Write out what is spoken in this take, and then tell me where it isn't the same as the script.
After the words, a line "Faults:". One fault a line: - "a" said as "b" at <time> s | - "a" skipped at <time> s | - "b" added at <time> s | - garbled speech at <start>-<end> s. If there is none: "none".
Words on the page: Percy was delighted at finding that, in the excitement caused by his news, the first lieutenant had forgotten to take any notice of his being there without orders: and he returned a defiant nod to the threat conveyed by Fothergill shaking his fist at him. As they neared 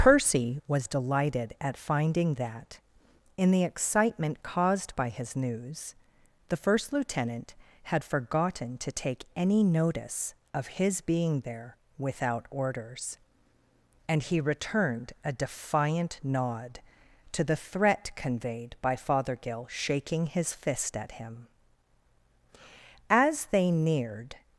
Percy was delighted at finding that, in the excitement caused by his news, the first lieutenant had forgotten to take any notice of his being there without orders: and he returned a defiant nod to the threat conveyed by Fothergill shaking his fist at him. As they neared
Faults:
none